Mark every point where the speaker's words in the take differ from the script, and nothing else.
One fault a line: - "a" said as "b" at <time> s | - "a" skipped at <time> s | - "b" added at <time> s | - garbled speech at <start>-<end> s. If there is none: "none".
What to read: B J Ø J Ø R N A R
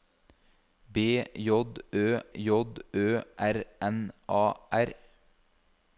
none